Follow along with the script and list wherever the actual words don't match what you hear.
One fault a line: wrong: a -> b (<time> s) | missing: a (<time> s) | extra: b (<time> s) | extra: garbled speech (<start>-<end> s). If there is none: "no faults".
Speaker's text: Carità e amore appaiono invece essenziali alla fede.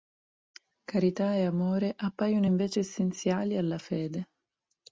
no faults